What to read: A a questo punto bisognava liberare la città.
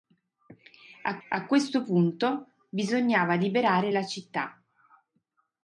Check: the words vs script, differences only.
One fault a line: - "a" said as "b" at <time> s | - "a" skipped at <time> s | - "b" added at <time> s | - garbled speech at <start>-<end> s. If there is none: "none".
none